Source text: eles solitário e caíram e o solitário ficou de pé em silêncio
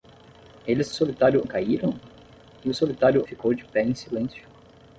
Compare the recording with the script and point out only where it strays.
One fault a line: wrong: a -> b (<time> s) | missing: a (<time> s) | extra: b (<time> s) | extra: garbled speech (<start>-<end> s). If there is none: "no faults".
no faults